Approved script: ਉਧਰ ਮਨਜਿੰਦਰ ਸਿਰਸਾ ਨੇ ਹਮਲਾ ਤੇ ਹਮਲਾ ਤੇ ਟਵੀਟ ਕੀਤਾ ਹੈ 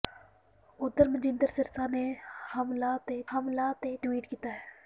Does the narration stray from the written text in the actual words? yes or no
no